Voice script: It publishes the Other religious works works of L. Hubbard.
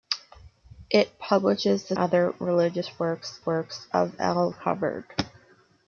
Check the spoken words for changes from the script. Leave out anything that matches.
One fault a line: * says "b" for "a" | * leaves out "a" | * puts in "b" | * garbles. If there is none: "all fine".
all fine